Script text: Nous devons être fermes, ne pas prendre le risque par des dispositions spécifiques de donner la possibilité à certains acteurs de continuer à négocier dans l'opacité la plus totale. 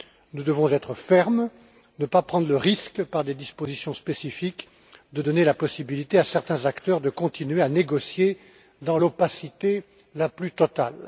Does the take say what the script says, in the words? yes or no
yes